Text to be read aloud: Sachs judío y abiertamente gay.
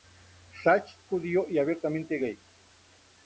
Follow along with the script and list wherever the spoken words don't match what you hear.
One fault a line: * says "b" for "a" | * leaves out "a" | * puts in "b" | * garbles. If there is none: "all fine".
all fine